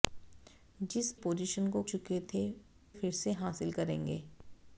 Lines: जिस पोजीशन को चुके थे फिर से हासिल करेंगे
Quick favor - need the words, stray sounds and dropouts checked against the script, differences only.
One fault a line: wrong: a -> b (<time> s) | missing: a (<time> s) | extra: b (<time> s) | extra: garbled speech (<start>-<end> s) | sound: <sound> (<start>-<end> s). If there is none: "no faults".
no faults